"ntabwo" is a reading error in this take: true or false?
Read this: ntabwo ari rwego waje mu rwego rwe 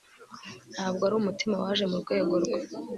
false